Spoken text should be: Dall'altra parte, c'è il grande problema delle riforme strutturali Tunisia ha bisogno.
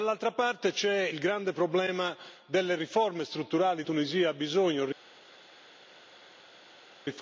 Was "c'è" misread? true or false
false